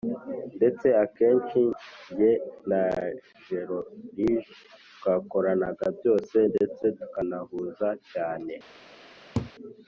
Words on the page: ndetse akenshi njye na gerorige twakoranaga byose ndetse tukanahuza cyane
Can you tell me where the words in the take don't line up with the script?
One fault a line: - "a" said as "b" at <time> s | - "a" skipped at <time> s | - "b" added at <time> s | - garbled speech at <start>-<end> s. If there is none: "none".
none